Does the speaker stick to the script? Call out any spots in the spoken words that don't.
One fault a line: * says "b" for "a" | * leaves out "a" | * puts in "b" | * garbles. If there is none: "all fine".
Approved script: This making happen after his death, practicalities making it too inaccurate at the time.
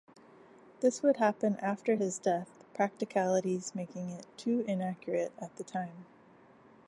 * says "would" for "making"